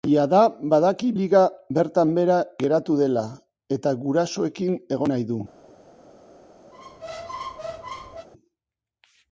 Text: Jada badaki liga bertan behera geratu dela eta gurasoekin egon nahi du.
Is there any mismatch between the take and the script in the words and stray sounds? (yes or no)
yes